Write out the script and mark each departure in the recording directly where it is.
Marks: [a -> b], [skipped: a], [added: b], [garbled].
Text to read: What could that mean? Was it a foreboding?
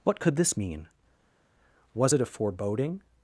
What could [that -> this] mean? Was it a foreboding?